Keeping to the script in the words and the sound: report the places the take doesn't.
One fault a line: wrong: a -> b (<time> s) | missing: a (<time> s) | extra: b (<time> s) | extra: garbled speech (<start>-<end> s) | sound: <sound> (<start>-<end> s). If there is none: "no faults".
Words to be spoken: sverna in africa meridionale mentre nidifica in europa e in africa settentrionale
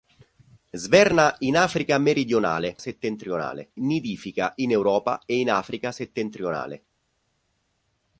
wrong: mentre -> settentrionale (2.8 s)